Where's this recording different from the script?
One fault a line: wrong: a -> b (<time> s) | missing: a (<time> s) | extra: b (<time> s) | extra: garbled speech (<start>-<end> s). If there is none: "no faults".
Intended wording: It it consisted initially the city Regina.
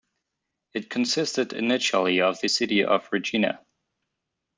missing: it (0.9 s)
extra: of (2.2 s)
extra: of (2.8 s)